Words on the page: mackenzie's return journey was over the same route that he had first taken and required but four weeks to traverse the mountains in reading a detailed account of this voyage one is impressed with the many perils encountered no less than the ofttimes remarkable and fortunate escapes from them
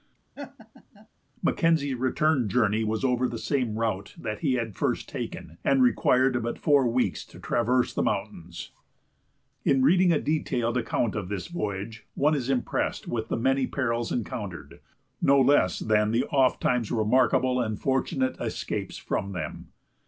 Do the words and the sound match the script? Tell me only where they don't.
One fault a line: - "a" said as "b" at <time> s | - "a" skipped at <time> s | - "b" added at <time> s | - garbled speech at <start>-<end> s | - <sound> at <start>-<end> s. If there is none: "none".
- laugh at 0.3-1.1 s